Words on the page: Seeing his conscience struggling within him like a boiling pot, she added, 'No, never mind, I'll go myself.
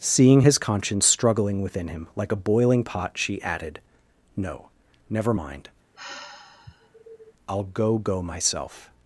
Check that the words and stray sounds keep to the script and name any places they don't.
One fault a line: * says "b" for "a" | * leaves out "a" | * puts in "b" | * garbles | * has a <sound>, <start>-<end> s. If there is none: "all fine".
* has a sigh, 5.9-7.3 s
* puts in "go"